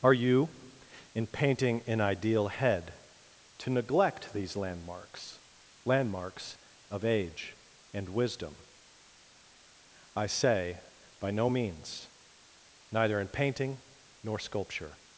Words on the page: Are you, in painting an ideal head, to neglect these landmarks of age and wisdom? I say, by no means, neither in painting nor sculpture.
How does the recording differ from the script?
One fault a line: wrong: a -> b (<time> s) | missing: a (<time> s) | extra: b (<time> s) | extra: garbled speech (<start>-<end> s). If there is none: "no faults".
extra: landmarks (5.8 s)